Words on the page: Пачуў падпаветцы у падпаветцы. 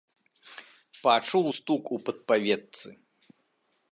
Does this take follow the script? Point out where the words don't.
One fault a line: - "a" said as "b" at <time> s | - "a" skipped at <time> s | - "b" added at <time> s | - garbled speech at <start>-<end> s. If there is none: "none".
- "падпаветцы" said as "стук" at 1.6 s